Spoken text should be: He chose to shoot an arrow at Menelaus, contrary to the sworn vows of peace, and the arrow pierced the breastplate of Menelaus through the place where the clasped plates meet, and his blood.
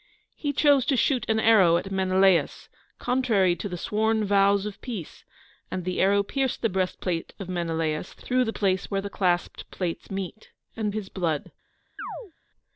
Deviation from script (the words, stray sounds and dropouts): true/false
true